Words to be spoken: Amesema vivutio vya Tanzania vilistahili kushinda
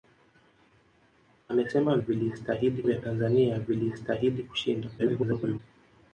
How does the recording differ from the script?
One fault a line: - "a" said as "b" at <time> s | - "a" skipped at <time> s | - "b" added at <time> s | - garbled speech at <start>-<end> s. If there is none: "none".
- "vivutio" said as "vilistahili" at 2.0 s
- garbled speech at 5.0-5.6 s